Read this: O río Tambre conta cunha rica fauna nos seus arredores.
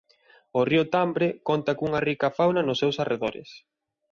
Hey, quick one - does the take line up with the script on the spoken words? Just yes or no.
yes